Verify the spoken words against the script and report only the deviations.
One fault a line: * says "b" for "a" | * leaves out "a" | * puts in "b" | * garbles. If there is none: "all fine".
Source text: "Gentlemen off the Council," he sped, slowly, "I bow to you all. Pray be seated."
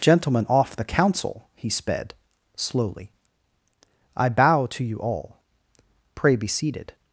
all fine